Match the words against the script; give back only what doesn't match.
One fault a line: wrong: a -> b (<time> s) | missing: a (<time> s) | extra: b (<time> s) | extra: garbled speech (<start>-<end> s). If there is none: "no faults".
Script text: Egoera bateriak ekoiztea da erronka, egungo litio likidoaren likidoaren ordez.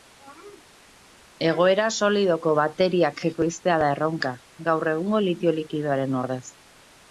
extra: solidoko (2.0 s)
extra: gaur (4.7 s)
missing: likidoaren (6.2 s)